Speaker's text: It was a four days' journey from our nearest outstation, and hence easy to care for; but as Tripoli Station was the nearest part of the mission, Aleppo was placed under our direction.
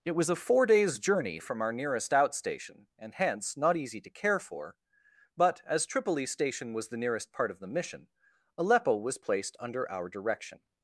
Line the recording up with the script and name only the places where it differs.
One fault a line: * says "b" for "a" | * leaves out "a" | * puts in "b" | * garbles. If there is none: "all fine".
* puts in "not"